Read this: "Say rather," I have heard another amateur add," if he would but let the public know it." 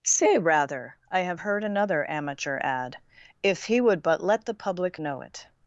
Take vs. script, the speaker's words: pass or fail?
pass